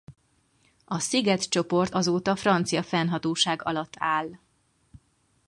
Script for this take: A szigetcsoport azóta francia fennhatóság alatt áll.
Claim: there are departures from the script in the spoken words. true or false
false